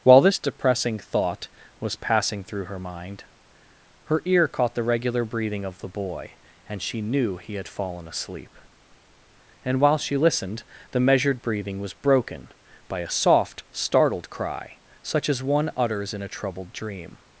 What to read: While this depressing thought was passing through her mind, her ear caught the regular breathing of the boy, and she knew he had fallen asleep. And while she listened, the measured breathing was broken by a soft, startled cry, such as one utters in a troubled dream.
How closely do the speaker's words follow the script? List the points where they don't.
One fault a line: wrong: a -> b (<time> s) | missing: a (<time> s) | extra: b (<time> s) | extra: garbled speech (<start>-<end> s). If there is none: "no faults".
no faults